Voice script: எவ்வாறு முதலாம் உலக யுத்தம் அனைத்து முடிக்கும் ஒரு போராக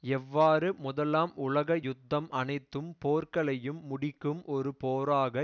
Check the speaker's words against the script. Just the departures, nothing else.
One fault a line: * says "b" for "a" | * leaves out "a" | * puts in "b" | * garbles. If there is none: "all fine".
* puts in "போர்களையும்"